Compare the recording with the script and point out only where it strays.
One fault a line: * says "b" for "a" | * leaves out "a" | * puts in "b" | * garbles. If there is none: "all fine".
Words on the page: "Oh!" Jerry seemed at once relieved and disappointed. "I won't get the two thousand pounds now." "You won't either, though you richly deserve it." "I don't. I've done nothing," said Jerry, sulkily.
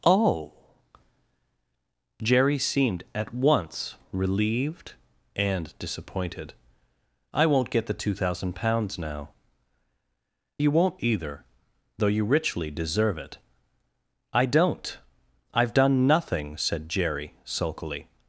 all fine